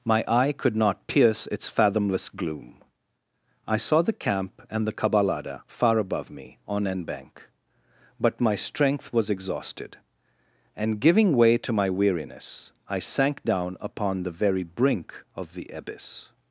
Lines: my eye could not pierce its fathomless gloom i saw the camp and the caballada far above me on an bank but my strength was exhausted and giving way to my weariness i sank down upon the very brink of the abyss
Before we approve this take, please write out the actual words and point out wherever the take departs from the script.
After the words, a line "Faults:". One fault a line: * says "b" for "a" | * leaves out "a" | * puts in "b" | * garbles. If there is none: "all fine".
my eye could not pierce its fathomless gloom i saw the camp and the caballada far above me on an bank but my strength was exhausted and giving way to my weariness i sank down upon the very brink of the abyss
Faults:
all fine